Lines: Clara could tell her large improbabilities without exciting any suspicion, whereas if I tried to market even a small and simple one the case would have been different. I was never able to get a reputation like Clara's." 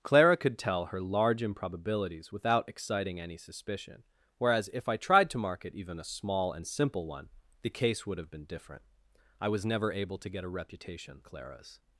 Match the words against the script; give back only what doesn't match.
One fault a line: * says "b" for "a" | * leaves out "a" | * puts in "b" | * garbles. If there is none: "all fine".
* leaves out "like"